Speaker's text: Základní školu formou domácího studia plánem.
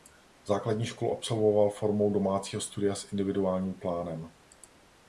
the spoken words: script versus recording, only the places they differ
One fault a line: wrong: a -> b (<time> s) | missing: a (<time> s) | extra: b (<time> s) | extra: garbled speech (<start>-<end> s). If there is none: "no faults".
extra: absolvoval (1.1 s)
extra: s individuálním (3.0 s)